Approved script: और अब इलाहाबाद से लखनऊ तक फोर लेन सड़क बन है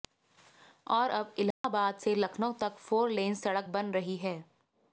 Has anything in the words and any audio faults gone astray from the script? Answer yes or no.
yes